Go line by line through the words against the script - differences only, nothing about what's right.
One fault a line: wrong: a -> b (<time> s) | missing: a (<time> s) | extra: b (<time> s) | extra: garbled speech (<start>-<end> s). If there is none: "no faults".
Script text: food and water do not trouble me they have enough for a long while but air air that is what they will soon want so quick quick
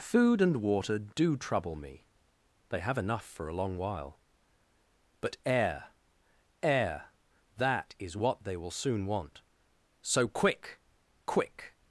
missing: not (1.4 s)